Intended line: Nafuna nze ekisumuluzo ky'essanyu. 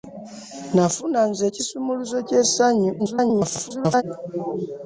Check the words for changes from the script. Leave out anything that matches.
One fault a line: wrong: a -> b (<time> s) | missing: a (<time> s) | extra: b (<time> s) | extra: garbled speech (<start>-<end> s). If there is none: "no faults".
extra: garbled speech (3.0-4.0 s)